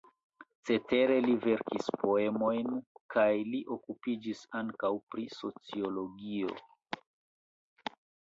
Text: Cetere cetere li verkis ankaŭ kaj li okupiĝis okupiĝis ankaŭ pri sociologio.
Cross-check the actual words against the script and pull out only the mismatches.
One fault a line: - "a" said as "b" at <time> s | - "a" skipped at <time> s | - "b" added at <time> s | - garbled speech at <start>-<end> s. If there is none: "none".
- "cetere" skipped at 1.2 s
- "ankaŭ" said as "poemojn" at 2.0 s
- "okupiĝis" skipped at 4.4 s